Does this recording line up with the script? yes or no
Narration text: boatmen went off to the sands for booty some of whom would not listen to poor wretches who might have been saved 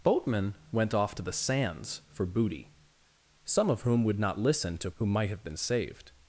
no